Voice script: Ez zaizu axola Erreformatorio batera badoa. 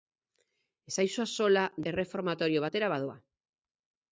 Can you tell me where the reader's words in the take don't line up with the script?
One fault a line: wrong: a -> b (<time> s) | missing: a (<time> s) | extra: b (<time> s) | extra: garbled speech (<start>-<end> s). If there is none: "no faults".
no faults